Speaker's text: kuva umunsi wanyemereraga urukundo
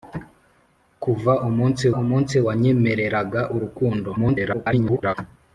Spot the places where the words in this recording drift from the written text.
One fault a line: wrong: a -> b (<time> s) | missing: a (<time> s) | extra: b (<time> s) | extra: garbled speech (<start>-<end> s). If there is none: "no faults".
extra: umunsi (2.0 s)
extra: garbled speech (4.1-5.1 s)